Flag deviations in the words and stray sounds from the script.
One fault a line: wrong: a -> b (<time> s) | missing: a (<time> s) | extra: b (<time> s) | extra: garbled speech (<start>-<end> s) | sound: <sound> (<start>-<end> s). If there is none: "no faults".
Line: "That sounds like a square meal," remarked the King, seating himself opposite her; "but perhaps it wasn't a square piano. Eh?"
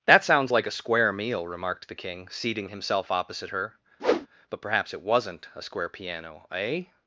sound: whoosh (4.0-4.3 s)